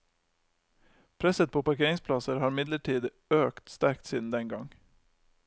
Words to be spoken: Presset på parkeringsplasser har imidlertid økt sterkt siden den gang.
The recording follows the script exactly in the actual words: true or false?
true